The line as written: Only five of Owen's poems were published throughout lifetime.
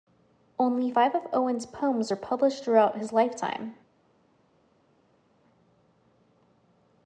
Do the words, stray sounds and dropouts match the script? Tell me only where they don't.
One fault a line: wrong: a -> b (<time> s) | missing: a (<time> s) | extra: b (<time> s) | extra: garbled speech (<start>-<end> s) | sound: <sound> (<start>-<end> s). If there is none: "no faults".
extra: his (3.0 s)